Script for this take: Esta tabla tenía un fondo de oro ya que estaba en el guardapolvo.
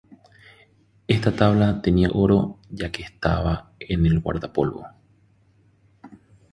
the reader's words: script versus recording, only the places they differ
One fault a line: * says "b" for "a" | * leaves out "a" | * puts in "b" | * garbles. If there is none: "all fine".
* leaves out "un fondo de"